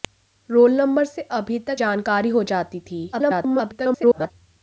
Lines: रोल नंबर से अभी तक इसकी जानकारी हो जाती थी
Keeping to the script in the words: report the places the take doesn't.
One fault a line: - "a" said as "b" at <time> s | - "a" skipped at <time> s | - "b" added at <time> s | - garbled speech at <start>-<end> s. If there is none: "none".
- "इसकी" skipped at 1.8 s
- garbled speech at 3.1-4.3 s